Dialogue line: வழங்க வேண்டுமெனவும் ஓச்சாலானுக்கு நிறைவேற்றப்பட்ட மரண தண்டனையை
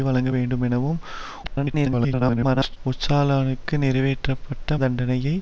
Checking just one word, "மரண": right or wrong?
wrong